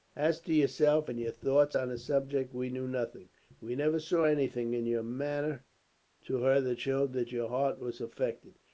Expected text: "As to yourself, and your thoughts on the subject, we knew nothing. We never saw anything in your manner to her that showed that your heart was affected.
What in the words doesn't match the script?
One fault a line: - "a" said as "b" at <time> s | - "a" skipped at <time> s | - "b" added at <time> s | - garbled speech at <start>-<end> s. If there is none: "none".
none